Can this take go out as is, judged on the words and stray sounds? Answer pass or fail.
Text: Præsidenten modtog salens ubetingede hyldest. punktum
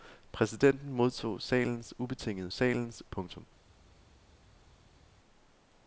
fail